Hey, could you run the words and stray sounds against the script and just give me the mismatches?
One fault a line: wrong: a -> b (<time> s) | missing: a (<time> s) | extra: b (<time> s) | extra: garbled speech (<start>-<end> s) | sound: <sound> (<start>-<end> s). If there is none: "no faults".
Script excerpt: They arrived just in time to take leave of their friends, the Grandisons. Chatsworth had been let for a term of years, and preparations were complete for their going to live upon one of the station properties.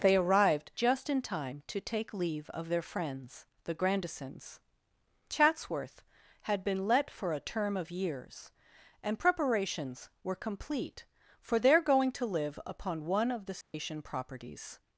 sound: dropout (13.6-13.7 s)